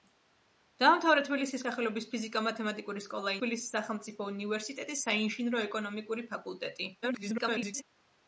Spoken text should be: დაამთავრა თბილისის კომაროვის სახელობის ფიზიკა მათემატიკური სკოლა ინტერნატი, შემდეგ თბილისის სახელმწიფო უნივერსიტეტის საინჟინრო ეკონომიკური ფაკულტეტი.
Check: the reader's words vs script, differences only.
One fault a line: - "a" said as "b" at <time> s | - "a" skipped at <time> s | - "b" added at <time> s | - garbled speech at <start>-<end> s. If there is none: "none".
- "კომაროვის" skipped at 1.6 s
- "ინტერნატი შემდეგ" skipped at 3.4 s
- garbled speech at 7.0-7.8 s